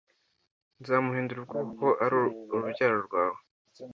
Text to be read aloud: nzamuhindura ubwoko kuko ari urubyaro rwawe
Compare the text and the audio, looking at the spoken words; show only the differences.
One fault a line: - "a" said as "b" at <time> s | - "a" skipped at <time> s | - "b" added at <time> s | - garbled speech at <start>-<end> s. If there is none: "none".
none